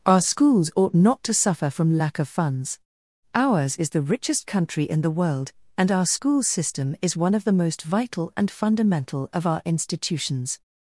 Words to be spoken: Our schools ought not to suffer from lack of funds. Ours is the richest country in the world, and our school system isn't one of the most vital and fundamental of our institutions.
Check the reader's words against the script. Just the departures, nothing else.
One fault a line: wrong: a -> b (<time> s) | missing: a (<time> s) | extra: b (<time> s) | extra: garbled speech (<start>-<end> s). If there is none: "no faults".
wrong: isn't -> is (7.0 s)